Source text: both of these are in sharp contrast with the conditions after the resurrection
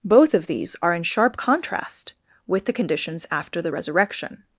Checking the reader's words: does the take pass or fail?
pass